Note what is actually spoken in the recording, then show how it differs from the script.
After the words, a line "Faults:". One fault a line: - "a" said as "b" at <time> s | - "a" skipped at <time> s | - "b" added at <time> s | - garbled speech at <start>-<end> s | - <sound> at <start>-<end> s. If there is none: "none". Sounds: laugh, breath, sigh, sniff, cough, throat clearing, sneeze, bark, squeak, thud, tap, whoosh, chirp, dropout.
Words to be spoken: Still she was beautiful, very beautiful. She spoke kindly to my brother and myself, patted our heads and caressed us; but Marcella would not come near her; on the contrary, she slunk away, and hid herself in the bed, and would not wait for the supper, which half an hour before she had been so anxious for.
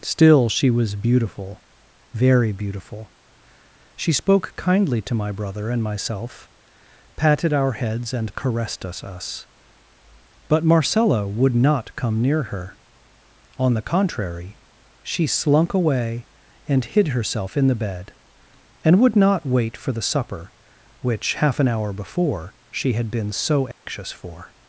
Still she was beautiful, very beautiful. She spoke kindly to my brother and myself, patted our heads and caressed us us; but Marcella would not come near her; on the contrary, she slunk away, and hid herself in the bed, and would not wait for the supper, which half an hour before she had been so anxious for.
Faults:
- "us" added at 9.0 s
- dropout at 23.7-23.9 s